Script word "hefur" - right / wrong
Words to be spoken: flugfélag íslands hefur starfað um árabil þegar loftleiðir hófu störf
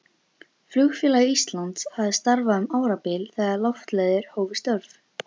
wrong